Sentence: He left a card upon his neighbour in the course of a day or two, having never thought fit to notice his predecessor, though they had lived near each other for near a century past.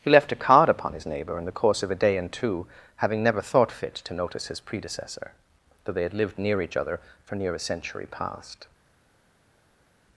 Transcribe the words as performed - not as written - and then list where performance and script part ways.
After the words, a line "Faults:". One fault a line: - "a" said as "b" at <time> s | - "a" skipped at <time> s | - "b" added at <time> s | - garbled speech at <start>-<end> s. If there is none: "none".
He left a card upon his neighbour in the course of a day and two, having never thought fit to notice his predecessor, though they had lived near each other for near a century past.
Faults:
- "or" said as "and" at 2.2 s